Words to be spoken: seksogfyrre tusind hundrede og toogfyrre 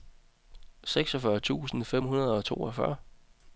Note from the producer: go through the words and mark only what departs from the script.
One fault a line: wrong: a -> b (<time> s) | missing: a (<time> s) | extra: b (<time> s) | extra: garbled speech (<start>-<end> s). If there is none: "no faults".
extra: fem (1.8 s)